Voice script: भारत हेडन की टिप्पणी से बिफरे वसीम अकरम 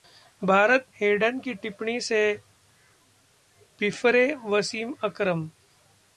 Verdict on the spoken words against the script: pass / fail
pass